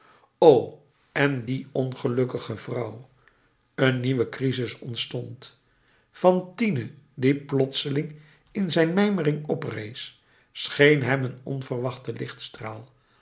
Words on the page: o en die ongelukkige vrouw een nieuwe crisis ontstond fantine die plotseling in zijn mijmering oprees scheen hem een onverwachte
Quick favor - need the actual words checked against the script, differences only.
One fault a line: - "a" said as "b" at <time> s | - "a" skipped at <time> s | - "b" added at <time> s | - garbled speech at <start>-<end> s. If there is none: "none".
none